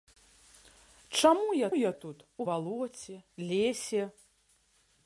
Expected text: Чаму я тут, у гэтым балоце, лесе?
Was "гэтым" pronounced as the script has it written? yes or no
no